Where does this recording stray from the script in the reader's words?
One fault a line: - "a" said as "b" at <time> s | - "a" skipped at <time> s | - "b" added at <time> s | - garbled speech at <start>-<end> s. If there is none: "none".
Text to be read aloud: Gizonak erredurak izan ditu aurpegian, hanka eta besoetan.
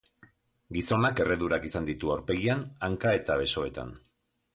none